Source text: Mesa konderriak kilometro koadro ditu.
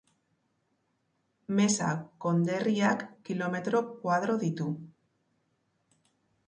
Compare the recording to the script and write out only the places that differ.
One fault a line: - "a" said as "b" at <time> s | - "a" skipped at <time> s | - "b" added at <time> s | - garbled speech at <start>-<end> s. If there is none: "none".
none